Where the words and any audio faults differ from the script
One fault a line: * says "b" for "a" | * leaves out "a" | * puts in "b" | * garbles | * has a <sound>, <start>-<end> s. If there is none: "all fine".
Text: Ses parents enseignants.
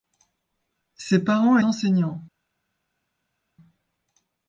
all fine